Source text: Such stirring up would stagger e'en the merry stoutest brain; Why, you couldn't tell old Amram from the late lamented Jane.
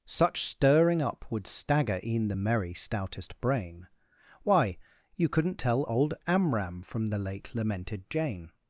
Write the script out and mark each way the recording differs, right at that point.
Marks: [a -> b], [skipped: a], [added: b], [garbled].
Such stirring up would stagger e'en the merry stoutest brain; Why, you couldn't tell old Amram from the late lamented Jane.